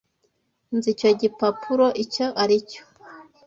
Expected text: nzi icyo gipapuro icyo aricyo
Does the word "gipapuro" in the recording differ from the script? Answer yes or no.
no